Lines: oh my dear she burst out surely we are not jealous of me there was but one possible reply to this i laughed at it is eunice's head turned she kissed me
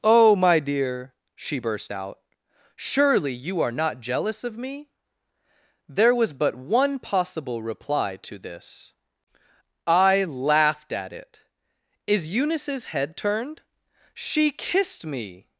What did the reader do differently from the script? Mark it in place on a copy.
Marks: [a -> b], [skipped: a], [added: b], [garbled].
oh my dear she burst out surely [we -> you] are not jealous of me there was but one possible reply to this i laughed at it is eunice's head turned she kissed me